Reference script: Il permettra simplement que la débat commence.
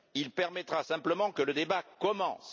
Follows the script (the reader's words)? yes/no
no